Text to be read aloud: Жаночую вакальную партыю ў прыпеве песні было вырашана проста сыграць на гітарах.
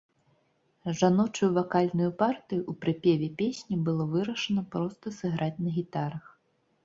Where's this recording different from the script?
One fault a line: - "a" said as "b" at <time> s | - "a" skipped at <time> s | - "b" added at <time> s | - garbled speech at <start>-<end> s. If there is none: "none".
none